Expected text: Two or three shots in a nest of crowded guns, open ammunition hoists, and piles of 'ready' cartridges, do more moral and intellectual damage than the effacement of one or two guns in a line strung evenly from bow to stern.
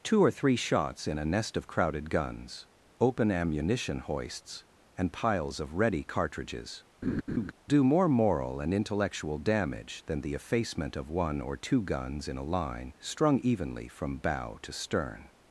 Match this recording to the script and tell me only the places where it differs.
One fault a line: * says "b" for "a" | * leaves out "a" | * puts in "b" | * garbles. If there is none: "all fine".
all fine